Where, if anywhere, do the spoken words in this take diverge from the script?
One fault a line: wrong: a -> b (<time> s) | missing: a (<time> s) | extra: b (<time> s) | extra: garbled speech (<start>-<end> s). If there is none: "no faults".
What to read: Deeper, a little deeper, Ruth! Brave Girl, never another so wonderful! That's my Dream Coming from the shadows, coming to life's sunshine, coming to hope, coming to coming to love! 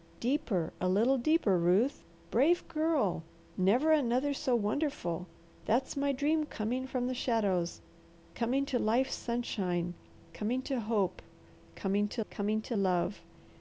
no faults